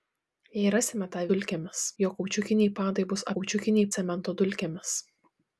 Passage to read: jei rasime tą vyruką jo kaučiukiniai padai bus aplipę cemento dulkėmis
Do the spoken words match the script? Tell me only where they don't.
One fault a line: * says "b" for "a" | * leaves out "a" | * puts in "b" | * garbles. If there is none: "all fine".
* says "dulkėmis" for "vyruką"
* says "kaučiukiniai" for "aplipę"